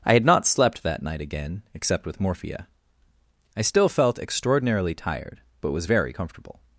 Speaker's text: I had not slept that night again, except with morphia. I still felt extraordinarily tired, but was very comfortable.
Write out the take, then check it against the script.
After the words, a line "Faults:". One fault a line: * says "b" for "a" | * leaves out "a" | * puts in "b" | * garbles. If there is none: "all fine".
I had not slept that night again, except with morphia. I still felt extraordinarily tired, but was very comfortable.
Faults:
all fine